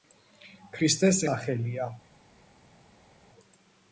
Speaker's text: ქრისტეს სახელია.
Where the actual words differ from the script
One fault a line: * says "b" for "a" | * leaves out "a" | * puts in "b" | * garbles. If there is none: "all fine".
all fine